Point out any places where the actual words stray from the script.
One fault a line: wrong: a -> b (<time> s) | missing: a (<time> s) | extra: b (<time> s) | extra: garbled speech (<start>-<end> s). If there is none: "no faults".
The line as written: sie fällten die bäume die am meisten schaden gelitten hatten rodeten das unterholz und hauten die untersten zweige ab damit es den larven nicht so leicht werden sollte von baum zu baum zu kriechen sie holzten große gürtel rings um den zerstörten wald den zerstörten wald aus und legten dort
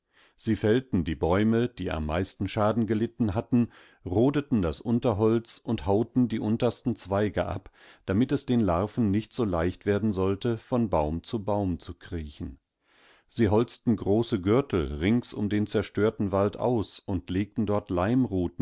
missing: den zerstörten wald (16.6 s)